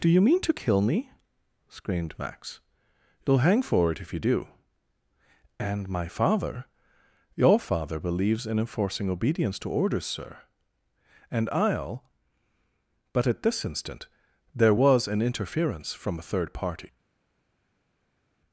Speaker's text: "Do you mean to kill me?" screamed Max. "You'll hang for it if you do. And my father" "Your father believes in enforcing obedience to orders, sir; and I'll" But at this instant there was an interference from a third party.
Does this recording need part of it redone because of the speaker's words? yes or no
no